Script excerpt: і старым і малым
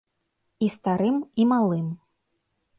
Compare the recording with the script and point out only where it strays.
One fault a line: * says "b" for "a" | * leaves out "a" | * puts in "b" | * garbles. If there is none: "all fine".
all fine